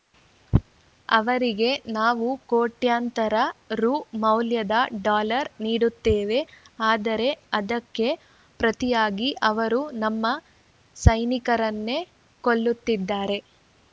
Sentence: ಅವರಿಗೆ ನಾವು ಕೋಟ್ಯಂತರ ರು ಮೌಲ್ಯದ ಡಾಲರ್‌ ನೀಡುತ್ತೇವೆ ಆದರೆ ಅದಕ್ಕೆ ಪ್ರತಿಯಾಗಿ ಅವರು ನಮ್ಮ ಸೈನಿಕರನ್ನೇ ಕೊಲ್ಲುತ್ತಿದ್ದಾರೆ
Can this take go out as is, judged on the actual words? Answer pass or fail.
pass